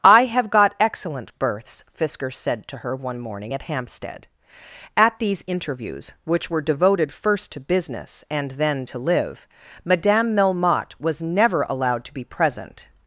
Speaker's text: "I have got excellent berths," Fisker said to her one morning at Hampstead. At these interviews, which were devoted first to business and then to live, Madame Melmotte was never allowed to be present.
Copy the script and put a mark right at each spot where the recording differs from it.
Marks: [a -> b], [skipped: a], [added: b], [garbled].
"I have got excellent berths," Fisker said to her one morning at Hampstead. At these interviews, which were devoted first to business and then to live, Madame Melmotte was never allowed to be present.